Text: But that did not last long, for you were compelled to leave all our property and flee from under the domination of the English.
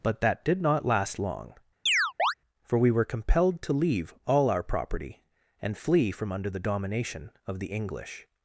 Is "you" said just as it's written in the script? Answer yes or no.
no